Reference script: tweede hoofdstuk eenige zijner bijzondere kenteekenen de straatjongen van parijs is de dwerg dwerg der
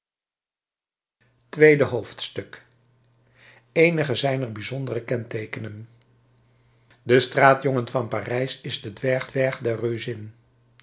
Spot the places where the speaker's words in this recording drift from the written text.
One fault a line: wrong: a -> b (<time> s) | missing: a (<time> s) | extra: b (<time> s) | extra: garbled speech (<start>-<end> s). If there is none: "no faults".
no faults